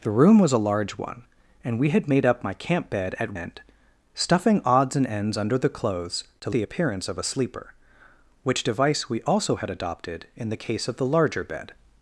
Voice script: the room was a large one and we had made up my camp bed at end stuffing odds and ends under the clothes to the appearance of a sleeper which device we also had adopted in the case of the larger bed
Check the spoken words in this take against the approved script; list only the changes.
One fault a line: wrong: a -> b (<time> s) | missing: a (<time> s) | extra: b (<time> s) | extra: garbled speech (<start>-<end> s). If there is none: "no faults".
no faults